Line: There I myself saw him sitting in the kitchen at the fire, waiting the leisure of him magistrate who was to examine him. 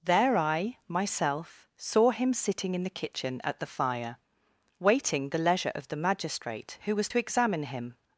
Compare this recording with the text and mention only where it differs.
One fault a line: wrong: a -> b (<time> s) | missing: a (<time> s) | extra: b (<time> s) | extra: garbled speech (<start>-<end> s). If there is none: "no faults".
wrong: him -> the (5.9 s)